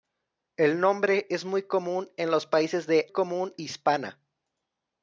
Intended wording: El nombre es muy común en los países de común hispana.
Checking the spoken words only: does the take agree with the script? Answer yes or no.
yes